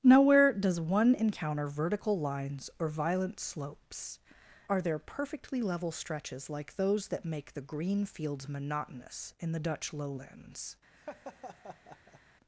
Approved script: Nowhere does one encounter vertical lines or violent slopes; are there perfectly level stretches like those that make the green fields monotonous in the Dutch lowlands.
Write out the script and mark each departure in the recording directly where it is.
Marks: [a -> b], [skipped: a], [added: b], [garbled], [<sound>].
Nowhere does one encounter vertical lines or violent slopes; are there perfectly level stretches like those that make the green fields monotonous in the Dutch lowlands. [laugh]